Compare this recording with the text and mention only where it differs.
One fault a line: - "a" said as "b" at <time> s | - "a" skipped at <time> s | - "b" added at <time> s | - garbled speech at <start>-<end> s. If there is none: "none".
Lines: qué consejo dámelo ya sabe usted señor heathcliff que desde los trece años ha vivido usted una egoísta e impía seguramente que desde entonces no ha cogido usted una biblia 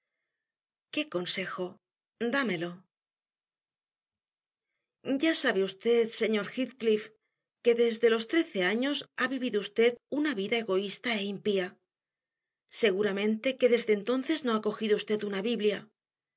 - "vida" added at 10.4 s